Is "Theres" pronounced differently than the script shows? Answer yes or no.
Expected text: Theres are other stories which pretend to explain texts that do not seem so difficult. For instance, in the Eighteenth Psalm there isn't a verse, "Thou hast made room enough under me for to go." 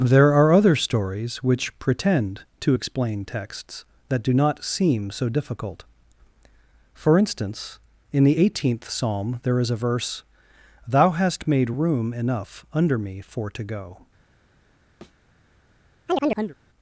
yes